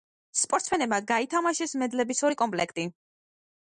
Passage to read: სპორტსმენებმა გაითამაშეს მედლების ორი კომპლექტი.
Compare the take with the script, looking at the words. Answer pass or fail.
pass